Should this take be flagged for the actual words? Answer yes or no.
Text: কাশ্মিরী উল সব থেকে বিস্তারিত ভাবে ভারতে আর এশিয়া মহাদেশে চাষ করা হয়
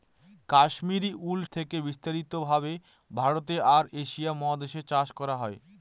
yes